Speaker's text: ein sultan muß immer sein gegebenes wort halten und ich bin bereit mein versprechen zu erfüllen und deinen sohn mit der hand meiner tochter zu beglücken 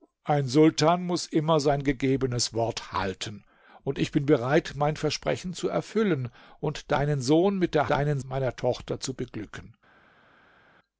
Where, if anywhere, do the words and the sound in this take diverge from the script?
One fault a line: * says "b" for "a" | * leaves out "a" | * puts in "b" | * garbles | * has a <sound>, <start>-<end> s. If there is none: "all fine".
* says "deinen" for "hand"